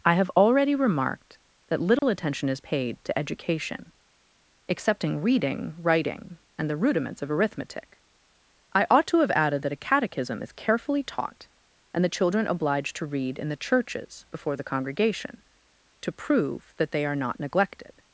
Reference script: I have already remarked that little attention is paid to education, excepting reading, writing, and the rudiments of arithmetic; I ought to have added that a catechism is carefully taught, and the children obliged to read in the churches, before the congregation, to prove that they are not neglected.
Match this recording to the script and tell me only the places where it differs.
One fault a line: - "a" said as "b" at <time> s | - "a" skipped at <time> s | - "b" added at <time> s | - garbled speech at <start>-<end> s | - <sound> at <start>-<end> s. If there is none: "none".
- dropout at 2.0-2.0 s